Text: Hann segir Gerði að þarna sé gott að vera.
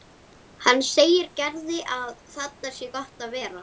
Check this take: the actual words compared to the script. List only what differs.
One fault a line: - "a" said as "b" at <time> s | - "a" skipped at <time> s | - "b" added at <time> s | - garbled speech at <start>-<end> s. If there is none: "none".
none